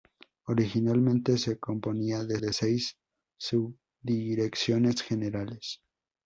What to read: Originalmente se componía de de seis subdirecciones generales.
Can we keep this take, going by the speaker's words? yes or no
yes